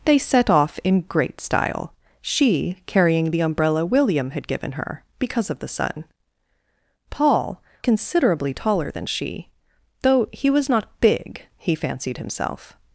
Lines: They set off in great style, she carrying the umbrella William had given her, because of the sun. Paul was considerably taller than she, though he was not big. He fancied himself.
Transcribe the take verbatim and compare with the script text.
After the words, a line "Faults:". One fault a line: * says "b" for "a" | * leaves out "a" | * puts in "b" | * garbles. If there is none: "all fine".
They set off in great style, she carrying the umbrella William had given her, because of the sun. Paul considerably taller than she, though he was not big. He fancied himself.
Faults:
* leaves out "was"